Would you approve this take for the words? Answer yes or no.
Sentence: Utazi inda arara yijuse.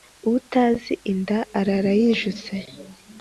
yes